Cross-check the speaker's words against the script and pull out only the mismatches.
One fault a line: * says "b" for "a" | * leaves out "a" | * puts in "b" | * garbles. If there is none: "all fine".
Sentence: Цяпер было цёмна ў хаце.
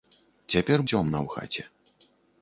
* leaves out "было"